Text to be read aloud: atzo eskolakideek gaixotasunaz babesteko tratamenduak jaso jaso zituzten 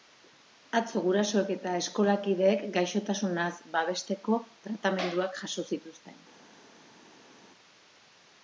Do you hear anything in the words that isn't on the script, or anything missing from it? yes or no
yes